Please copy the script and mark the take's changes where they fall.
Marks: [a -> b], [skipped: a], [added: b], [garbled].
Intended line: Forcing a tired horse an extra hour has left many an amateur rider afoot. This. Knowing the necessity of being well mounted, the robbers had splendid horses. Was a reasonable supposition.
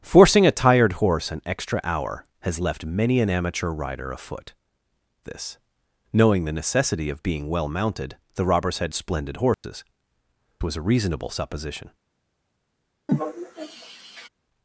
Forcing a tired horse an extra hour has left many an amateur rider afoot. This. Knowing the necessity of being well mounted, the robbers had splendid horses. Was a reasonable supposition.